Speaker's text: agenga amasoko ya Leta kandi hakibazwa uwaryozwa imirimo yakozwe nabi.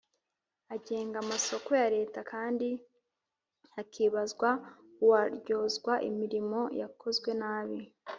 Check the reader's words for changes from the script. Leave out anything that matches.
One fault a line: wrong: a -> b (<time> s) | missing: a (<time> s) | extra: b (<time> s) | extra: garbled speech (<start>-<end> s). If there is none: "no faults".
no faults